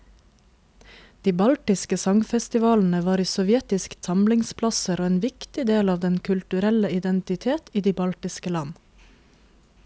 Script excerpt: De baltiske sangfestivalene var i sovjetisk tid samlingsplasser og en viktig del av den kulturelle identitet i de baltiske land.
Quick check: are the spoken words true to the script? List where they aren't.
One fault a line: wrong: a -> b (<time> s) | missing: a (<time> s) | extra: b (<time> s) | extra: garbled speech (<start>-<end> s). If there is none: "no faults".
missing: tid (4.0 s)